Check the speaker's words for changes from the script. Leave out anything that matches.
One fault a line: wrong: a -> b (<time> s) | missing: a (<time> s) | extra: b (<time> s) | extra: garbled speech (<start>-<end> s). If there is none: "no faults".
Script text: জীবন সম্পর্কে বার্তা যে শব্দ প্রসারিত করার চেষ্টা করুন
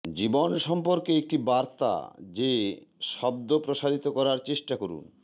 extra: একটি (1.2 s)